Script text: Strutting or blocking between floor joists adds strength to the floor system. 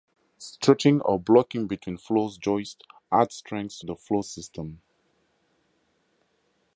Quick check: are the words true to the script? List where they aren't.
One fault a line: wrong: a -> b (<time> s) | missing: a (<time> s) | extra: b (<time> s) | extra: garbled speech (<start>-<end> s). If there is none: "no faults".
no faults